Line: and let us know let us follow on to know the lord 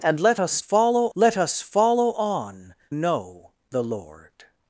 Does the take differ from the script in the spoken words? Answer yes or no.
yes